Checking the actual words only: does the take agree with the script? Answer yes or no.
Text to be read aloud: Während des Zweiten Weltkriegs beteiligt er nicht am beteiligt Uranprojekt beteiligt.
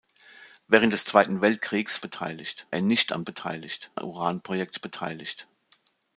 yes